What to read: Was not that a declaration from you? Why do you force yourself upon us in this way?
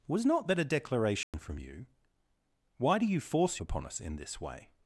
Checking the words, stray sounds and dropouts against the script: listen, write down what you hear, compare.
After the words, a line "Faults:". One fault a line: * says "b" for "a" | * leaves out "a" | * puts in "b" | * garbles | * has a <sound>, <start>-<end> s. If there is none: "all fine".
Was not that a declaration from you? Why do you force upon us in this way?
Faults:
* has a dropout, 1.2-1.3 s
* leaves out "yourself"